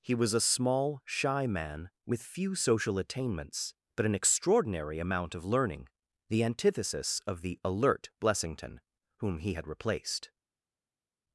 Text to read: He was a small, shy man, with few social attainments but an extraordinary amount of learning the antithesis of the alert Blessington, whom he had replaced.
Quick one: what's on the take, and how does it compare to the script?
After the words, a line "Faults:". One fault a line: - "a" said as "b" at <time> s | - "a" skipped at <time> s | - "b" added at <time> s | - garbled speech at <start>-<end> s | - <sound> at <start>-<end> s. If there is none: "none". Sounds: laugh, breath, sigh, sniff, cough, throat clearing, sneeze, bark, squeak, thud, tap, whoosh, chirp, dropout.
He was a small, shy man, with few social attainments but an extraordinary amount of learning the antithesis of the alert Blessington, whom he had replaced.
Faults:
none